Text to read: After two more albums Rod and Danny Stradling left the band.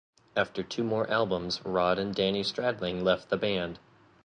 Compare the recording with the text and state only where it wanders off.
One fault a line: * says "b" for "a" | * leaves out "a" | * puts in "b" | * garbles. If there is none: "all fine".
all fine